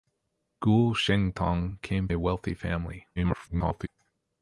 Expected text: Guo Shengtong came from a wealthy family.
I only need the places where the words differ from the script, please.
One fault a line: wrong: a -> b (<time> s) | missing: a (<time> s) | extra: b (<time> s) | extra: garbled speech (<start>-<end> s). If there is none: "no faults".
missing: from (2.1 s)
extra: garbled speech (3.2-3.9 s)